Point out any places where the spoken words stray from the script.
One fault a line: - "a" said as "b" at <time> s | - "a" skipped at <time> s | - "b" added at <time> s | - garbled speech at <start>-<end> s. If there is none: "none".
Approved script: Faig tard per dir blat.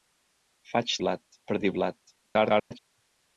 - "tard" said as "blat" at 1.0 s
- garbled speech at 2.2-2.8 s